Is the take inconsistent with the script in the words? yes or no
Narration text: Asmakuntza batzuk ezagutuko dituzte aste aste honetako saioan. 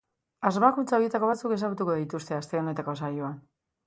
yes